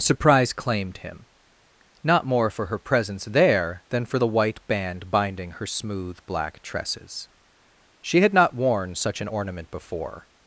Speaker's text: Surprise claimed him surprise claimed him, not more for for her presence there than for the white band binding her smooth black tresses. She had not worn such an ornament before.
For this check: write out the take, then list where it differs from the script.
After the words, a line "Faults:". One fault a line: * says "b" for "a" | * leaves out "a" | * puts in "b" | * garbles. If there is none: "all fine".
Surprise claimed him, not more for her presence there than for the white band binding her smooth black tresses. She had not worn such an ornament before.
Faults:
* leaves out "surprise claimed him"
* leaves out "for"